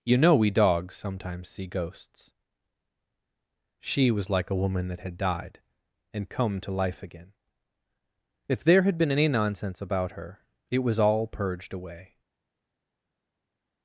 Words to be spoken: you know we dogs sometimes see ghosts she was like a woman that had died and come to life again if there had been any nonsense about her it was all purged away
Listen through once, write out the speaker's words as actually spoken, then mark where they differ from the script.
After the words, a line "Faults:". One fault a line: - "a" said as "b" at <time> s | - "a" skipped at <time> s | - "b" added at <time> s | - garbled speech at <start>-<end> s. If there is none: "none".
you know we dogs sometimes see ghosts she was like a woman that had died and come to life again if there had been any nonsense about her it was all purged away
Faults:
none